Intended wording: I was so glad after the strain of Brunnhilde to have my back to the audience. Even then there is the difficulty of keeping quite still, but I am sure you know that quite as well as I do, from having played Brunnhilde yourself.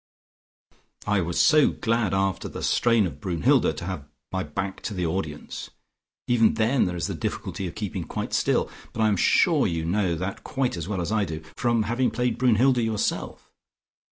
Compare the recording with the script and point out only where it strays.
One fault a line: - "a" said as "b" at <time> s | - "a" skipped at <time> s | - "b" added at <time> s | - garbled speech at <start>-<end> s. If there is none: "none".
none